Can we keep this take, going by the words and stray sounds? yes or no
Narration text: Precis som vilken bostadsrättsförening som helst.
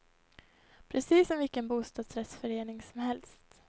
yes